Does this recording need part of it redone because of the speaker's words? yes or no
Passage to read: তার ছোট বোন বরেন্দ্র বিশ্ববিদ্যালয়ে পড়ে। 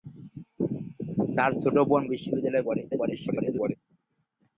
yes